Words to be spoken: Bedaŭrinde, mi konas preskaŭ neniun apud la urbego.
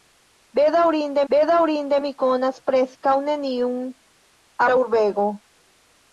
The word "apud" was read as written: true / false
false